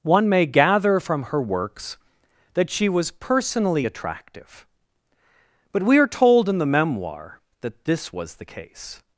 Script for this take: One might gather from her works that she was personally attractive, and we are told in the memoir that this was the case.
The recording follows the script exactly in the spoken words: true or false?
false